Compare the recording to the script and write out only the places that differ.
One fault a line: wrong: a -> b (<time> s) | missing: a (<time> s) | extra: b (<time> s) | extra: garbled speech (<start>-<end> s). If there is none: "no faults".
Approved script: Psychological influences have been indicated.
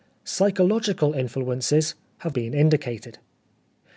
no faults